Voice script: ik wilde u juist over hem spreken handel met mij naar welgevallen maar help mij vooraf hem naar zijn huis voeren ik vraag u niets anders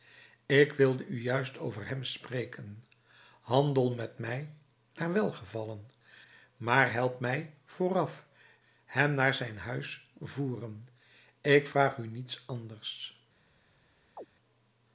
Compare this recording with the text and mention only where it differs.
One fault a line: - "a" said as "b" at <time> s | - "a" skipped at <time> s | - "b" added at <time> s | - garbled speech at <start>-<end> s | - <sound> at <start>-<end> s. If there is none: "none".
- chirp at 14.2-14.3 s